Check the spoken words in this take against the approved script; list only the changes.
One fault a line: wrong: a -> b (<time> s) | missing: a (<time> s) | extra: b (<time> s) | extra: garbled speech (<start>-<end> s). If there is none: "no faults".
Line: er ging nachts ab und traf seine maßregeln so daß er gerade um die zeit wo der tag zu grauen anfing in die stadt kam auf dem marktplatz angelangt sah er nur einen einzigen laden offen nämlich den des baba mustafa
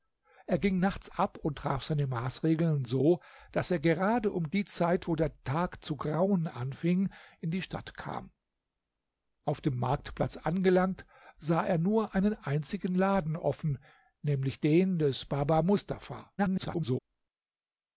extra: garbled speech (16.4-17.0 s)